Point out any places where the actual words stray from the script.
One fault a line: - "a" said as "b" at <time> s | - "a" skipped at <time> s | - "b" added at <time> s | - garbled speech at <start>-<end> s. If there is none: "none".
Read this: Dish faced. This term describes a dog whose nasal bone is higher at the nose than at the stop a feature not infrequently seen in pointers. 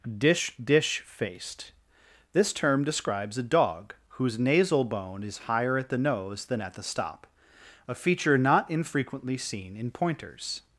- "dish" added at 0.6 s